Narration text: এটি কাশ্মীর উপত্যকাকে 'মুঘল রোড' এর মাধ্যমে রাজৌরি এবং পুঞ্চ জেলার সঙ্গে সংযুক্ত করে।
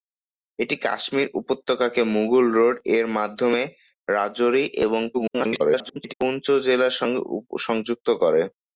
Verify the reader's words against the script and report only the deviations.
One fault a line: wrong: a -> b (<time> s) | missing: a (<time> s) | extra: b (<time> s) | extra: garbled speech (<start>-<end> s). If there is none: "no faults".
extra: garbled speech (5.1-6.1 s)